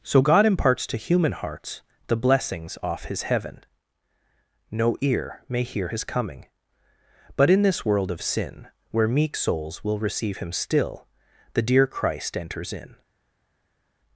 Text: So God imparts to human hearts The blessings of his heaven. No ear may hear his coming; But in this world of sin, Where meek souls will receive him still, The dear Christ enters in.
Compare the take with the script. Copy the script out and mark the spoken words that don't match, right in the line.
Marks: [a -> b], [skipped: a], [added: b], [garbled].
So God imparts to human hearts The blessings [of -> off] his heaven. No ear may hear his coming; But in this world of sin, Where meek souls will receive him still, The dear Christ enters in.